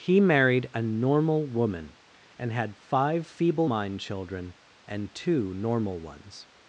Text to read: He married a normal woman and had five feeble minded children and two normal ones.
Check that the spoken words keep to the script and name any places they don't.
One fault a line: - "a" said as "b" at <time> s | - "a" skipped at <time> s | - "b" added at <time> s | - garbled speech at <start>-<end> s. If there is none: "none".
- "minded" said as "mind" at 3.6 s